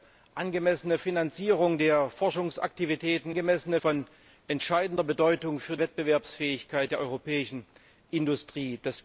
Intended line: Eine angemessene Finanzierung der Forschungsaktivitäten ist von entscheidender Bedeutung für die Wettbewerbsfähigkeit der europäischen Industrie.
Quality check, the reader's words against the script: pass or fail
fail